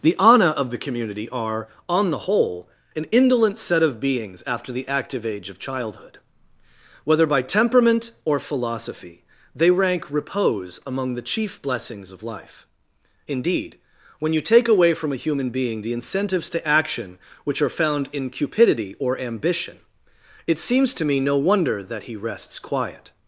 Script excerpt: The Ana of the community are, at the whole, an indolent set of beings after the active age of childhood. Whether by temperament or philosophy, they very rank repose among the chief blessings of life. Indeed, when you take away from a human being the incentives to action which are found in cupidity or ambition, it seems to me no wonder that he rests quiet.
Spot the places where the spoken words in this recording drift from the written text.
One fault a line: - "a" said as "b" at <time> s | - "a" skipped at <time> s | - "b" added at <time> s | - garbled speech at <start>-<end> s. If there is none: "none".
- "at" said as "on" at 1.9 s
- "very" skipped at 9.7 s